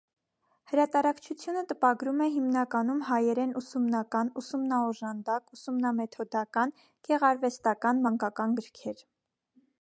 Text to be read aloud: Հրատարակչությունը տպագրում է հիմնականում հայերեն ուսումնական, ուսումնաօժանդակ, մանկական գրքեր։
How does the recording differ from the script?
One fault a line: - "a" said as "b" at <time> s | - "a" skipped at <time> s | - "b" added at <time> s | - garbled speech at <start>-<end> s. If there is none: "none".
- "ուսումնամեթոդական գեղարվեստական" added at 5.6 s